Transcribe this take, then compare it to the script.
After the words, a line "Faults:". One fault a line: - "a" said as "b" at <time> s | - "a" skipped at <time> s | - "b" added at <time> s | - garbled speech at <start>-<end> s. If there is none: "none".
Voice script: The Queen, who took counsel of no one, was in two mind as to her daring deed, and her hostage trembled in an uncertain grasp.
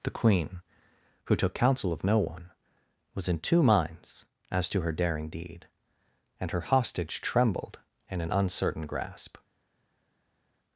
The Queen, who took counsel of no one, was in two minds as to her daring deed, and her hostage trembled in an uncertain grasp.
Faults:
- "mind" said as "minds" at 3.6 s